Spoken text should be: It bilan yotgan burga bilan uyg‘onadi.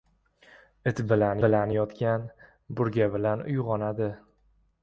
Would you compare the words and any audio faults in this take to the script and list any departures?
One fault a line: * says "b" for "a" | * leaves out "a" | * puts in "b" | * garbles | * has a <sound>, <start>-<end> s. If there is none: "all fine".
* puts in "bilan"